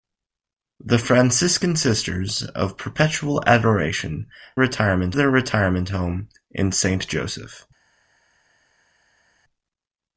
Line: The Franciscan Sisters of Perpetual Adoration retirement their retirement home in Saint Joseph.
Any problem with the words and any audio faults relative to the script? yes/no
no